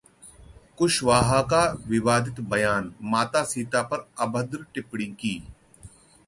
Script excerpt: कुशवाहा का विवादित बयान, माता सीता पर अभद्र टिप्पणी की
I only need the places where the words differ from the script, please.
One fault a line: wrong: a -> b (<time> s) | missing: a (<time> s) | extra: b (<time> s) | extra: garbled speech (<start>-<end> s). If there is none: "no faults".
no faults